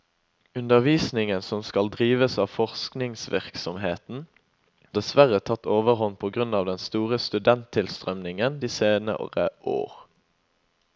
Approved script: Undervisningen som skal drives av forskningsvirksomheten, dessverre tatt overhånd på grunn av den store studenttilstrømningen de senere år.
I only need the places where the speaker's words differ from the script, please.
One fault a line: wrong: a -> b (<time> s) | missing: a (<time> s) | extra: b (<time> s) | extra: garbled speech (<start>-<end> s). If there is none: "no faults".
no faults